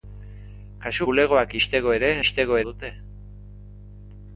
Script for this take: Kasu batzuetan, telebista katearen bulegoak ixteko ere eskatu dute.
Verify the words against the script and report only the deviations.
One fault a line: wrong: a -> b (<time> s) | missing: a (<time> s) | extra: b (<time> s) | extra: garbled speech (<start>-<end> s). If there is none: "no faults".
missing: batzuetan telebista katearen (1.1 s)
wrong: eskatu -> ixteko (2.2 s)